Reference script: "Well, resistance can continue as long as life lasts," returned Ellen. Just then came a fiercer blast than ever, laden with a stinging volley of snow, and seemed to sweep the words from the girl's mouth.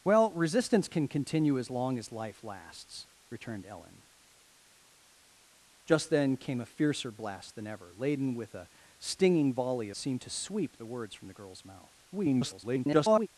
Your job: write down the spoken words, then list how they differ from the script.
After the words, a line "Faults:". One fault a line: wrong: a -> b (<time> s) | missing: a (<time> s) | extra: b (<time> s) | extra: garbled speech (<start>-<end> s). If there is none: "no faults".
"Well, resistance can continue as long as life lasts," returned Ellen. Just then came a fiercer blast than ever, laden with a stinging volley seemed to sweep the words from the girl's mouth. [garbled]
Faults:
missing: of snow and (9.9 s)
extra: garbled speech (12.1-13.3 s)